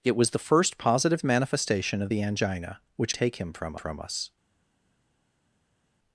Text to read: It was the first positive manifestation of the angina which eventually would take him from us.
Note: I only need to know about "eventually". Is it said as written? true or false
false